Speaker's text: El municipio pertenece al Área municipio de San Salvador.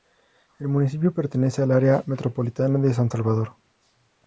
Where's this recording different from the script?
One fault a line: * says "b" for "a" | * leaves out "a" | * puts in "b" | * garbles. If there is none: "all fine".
* says "metropolitana" for "municipio"